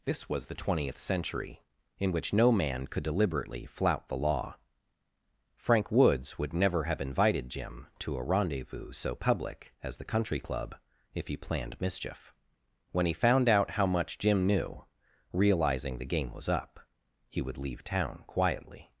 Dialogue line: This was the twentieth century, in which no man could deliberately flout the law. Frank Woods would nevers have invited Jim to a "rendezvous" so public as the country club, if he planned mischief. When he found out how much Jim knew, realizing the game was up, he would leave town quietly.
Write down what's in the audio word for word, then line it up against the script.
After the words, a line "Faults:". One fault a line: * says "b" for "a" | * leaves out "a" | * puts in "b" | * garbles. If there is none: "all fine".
This was the twentieth century, in which no man could deliberately flout the law. Frank Woods would never have invited Jim to a "rendezvous" so public as the country club, if he planned mischief. When he found out how much Jim knew, realizing the game was up, he would leave town quietly.
Faults:
* says "never" for "nevers"